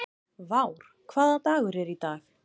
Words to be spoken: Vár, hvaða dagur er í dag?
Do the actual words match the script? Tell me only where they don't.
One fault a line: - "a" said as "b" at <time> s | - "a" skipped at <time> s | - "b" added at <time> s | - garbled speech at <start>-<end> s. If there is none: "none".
none